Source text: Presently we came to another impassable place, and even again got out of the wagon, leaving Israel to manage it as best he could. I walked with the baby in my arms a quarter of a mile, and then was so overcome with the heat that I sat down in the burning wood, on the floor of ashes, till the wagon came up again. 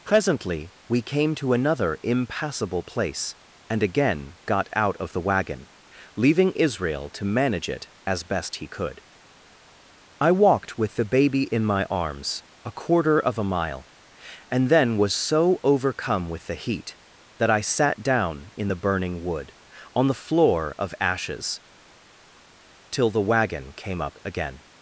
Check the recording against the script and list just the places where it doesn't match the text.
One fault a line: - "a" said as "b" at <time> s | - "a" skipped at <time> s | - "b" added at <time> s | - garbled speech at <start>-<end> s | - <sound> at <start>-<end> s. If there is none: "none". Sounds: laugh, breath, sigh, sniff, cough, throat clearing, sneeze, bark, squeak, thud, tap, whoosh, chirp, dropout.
- "even" skipped at 3.8 s